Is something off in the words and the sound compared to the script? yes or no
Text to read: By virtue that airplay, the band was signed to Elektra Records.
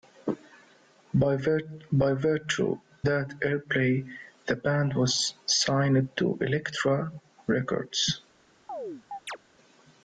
yes